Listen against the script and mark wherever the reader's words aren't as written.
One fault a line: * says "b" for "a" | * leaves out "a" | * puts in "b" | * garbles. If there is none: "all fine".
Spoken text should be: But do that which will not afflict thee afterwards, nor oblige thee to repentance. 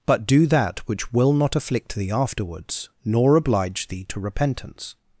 all fine